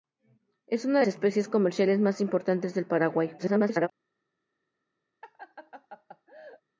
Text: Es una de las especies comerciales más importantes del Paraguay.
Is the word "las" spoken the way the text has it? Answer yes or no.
no